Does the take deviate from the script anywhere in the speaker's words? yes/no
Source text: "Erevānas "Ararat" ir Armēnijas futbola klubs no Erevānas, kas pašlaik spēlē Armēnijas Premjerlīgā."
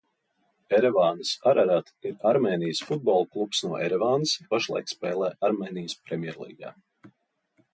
yes